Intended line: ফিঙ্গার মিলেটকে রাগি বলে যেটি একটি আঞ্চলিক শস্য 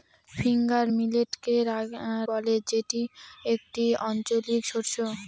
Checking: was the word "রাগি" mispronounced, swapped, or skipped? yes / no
yes